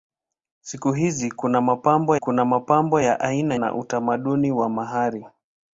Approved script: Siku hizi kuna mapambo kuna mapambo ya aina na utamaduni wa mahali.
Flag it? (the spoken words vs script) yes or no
no